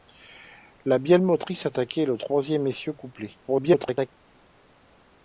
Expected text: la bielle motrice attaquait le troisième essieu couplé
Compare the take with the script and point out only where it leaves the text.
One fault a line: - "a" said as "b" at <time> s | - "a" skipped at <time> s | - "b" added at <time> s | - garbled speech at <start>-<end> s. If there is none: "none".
- garbled speech at 3.5-4.1 s